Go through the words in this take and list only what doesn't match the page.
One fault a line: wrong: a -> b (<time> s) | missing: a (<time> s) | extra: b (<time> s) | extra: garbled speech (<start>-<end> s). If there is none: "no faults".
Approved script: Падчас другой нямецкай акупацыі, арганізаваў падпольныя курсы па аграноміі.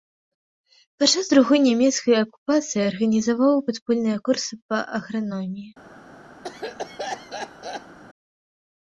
no faults